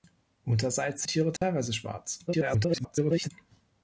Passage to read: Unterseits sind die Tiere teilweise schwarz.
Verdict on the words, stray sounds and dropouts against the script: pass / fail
fail